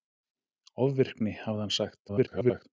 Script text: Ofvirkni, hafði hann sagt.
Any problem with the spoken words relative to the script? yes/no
yes